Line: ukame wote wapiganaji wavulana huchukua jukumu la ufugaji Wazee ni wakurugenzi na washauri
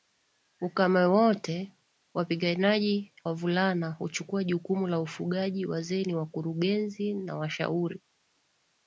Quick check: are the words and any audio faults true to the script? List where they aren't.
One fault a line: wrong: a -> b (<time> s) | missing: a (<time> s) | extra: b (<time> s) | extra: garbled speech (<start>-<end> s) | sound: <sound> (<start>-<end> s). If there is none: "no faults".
no faults